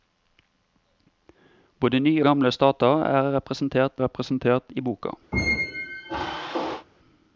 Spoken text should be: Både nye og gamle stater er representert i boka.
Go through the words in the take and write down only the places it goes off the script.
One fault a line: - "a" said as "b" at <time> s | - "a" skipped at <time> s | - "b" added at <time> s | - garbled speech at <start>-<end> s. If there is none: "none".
- "og" skipped at 2.2 s
- "representert" added at 4.0 s